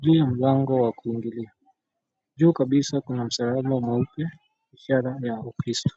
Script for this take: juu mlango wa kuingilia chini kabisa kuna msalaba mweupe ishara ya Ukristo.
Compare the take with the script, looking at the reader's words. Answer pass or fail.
fail